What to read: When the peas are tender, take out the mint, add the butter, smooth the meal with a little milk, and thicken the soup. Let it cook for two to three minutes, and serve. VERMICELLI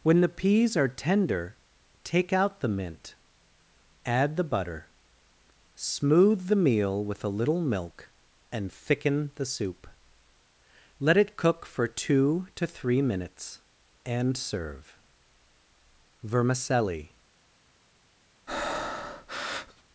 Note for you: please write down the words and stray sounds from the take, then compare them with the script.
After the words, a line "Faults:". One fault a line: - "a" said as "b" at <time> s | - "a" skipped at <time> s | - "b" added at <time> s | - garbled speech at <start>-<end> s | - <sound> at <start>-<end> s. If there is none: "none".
When the peas are tender, take out the mint, add the butter, smooth the meal with a little milk, and thicken the soup. Let it cook for two to three minutes, and serve. VERMICELLI
Faults:
- breath at 18.5-19.8 s